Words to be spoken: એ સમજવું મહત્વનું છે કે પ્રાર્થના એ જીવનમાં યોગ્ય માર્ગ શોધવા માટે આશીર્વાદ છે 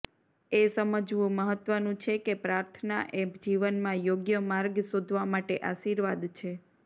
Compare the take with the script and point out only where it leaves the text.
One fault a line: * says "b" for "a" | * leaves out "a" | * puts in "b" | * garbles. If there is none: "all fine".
all fine